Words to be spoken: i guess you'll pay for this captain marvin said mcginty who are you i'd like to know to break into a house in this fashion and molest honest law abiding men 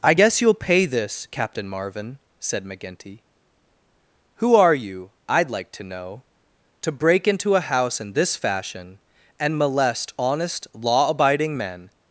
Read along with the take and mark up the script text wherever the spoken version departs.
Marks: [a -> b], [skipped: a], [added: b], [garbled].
i guess you'll pay [skipped: for] this captain marvin said mcginty who are you i'd like to know to break into a house in this fashion and molest honest law abiding men